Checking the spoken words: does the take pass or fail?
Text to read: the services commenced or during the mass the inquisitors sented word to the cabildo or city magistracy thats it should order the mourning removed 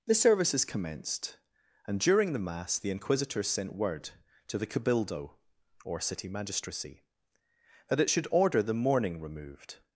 fail